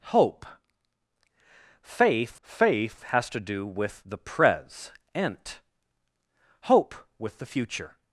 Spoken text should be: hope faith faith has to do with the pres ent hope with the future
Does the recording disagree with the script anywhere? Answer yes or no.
no